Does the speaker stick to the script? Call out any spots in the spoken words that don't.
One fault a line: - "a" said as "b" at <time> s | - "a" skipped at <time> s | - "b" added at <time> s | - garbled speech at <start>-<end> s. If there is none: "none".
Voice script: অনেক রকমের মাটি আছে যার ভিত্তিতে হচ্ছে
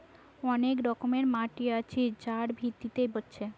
none